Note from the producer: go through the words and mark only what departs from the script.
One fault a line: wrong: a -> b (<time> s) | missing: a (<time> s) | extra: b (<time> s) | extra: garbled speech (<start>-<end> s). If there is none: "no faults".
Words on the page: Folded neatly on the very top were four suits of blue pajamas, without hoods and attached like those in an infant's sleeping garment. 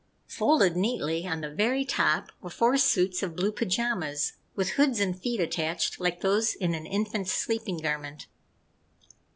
wrong: without -> with (4.5 s)
extra: feet (5.2 s)